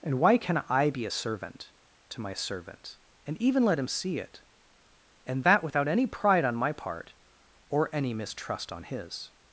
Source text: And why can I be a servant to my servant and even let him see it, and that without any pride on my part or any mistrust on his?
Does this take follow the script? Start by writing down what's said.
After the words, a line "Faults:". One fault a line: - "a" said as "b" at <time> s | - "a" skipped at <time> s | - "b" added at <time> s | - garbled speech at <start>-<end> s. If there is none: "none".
And why can I be a servant to my servant and even let him see it, and that without any pride on my part or any mistrust on his?
Faults:
none